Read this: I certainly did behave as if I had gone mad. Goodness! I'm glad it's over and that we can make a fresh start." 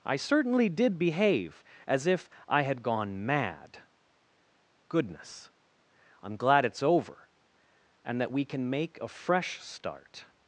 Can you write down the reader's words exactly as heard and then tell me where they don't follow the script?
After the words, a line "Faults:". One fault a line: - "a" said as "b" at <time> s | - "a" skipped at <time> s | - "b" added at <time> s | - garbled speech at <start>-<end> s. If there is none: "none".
I certainly did behave as if I had gone mad. Goodness! I'm glad it's over and that we can make a fresh start."
Faults:
none